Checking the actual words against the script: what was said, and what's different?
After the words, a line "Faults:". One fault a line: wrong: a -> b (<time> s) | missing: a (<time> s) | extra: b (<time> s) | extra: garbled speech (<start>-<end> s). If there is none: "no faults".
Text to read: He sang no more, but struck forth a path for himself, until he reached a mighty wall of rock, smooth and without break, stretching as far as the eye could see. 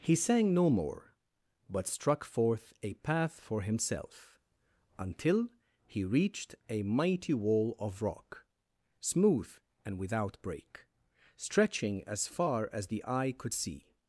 He sang no more, but struck forth a path for himself, until he reached a mighty wall of rock, smooth and without break, stretching as far as the eye could see.
Faults:
no faults